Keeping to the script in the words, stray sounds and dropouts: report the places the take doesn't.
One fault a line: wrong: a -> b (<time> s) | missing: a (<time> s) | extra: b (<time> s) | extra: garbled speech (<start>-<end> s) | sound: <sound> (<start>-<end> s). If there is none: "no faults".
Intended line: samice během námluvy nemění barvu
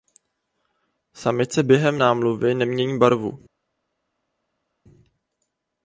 no faults